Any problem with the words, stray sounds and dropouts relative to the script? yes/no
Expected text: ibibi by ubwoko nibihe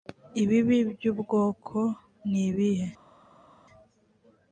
no